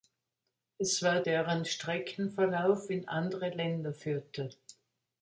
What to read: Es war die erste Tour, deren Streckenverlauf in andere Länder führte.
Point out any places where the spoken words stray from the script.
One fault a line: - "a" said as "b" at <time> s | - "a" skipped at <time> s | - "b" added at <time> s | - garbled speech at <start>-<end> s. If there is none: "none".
- "die erste Tour" skipped at 1.2 s